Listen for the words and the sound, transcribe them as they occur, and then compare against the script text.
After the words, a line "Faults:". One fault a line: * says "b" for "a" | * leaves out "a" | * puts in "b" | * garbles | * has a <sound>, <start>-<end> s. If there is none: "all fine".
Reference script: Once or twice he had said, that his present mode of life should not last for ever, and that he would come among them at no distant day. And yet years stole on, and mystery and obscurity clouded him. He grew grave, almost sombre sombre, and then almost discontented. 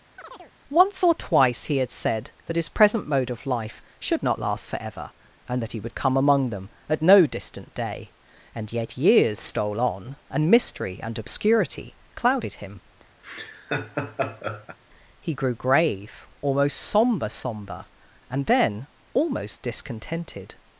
Once or twice he had said, that his present mode of life should not last for ever, and that he would come among them at no distant day. And yet years stole on, and mystery and obscurity clouded him. He grew grave, almost sombre sombre, and then almost discontented.
Faults:
* has a chirp, 0.2-0.5 s
* has a laugh, 13.2-14.8 s